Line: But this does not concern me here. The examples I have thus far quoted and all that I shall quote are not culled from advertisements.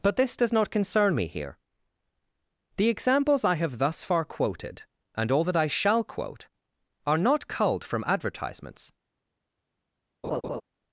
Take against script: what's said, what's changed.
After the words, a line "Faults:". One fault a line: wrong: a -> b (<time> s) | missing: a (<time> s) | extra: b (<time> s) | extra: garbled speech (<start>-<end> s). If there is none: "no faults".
But this does not concern me here. The examples I have thus far quoted and all that I shall quote are not culled from advertisements.
Faults:
no faults